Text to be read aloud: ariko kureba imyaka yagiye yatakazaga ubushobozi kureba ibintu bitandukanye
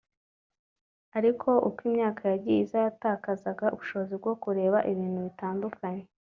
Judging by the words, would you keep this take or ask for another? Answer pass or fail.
fail